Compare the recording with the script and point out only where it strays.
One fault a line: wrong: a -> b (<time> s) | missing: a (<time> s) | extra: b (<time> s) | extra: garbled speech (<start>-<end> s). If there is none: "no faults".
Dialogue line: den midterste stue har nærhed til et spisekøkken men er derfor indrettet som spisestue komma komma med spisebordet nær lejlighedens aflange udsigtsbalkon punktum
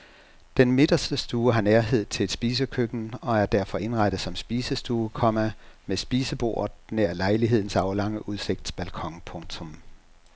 wrong: men -> og (3.2 s)
missing: komma (5.5 s)